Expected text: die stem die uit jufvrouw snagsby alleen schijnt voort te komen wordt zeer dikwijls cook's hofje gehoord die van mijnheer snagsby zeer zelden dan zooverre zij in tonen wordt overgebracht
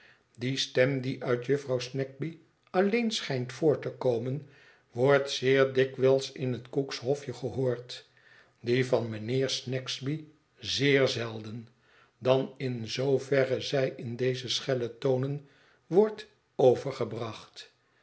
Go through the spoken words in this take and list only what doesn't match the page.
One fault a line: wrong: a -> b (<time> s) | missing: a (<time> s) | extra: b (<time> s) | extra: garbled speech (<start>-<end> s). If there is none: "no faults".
extra: in het (6.3 s)
extra: in (12.6 s)
extra: deze schelle (14.2 s)